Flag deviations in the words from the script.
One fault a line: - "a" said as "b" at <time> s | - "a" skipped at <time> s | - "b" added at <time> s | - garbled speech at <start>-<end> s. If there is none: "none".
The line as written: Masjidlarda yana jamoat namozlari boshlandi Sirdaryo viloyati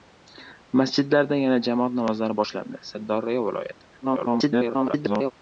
- garbled speech at 4.0-5.3 s